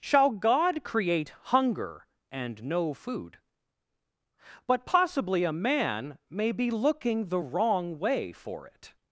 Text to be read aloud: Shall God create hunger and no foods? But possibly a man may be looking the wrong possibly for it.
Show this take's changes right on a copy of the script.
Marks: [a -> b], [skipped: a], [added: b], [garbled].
Shall God create hunger and no [foods? -> food] But possibly a man may be looking the wrong [possibly -> way] for it.